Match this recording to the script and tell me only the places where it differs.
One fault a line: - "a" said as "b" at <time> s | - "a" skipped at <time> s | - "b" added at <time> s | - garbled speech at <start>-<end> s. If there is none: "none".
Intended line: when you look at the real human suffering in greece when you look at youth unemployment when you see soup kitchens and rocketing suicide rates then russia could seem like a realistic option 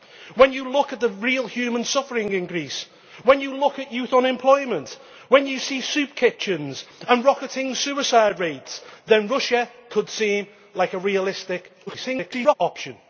- garbled speech at 11.9-12.5 s